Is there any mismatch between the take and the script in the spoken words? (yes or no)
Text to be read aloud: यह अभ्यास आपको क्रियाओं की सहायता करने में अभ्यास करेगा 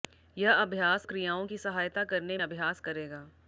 yes